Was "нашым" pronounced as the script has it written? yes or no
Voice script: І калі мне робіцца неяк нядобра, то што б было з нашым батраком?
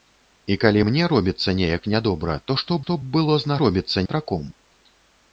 no